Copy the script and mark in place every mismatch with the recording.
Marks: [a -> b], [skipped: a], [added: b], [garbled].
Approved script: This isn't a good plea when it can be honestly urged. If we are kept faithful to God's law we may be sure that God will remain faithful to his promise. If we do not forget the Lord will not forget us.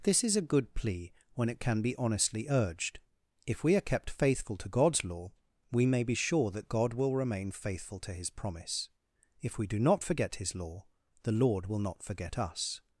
This [isn't -> is] a good plea when it can be honestly urged. If we are kept faithful to God's law we may be sure that God will remain faithful to his promise. If we do not forget [added: his law] the Lord will not forget us.